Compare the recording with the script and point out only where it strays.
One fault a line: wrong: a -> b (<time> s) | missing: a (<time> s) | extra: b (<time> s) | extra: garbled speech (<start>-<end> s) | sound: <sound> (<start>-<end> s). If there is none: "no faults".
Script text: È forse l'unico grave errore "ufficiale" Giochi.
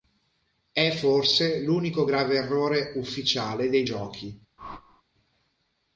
extra: dei (3.7 s)
sound: whoosh (4.6-5.0 s)